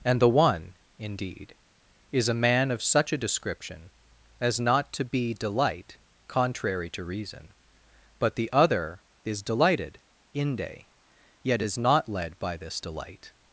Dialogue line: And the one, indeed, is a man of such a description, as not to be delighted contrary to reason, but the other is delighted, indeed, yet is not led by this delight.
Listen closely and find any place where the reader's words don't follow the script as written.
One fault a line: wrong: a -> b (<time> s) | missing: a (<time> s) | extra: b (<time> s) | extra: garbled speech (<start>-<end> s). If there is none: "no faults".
wrong: delighted -> delight (5.3 s)
wrong: indeed -> inde (10.3 s)